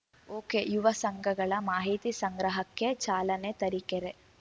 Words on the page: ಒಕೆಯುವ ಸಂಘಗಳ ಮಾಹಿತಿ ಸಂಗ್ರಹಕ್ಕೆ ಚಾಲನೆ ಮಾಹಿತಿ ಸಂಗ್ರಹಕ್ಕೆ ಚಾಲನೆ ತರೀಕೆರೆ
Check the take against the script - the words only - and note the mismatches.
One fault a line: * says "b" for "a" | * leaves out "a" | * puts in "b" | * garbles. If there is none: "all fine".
* leaves out "ಮಾಹಿತಿ ಸಂಗ್ರಹಕ್ಕೆ ಚಾಲನೆ"